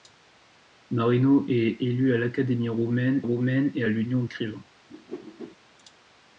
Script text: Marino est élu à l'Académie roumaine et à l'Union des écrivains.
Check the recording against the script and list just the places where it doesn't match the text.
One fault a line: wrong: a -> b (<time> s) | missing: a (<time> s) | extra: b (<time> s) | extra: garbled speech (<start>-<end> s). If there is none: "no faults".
extra: roumaine (3.2 s)
missing: des (4.2 s)